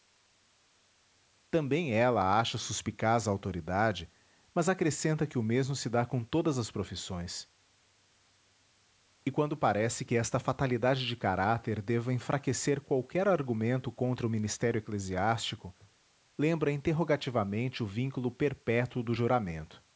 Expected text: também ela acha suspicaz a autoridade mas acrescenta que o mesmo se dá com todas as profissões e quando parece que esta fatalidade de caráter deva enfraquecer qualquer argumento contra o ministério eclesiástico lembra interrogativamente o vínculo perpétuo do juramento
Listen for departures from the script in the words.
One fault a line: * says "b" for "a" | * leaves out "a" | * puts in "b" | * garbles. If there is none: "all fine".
all fine